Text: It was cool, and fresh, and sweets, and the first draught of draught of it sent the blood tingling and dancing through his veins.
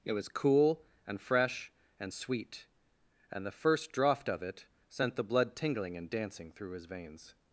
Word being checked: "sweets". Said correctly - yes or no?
no